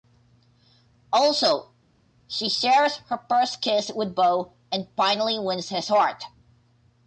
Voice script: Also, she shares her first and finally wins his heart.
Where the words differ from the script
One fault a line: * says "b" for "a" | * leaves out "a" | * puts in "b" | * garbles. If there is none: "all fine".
* puts in "kiss with Bo"